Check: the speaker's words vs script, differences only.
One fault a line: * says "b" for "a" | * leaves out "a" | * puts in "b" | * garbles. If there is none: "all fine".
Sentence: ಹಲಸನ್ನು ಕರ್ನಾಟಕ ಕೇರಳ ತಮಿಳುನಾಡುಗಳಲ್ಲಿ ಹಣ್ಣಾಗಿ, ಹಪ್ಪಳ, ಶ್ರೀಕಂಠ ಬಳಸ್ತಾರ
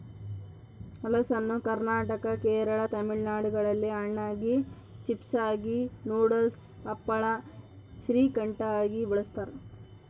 * puts in "ಚಿಪ್ಸಾಗಿ ನೂಡಲ್ಸ್"
* puts in "ಆಗಿ"